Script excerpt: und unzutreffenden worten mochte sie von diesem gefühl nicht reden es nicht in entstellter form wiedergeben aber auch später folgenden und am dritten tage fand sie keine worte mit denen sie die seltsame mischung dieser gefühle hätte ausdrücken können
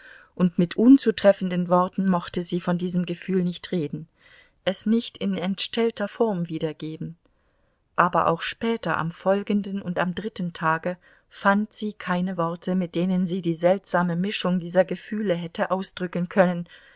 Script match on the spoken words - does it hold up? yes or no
no